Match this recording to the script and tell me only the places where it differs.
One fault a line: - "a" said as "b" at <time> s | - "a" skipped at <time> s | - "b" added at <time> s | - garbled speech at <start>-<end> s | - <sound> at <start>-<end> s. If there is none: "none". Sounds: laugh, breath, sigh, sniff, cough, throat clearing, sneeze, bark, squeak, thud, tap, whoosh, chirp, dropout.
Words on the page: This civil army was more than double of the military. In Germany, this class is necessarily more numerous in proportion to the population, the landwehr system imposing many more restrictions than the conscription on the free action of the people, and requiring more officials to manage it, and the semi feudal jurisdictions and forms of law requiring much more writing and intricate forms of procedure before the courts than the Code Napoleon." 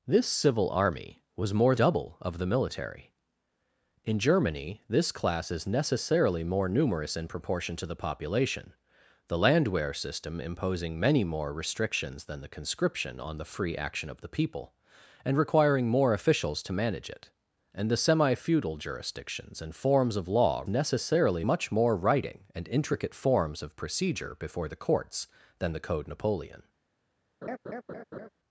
- "than" skipped at 1.8 s
- "requiring" said as "necessarily" at 20.7 s
- laugh at 27.4-28.3 s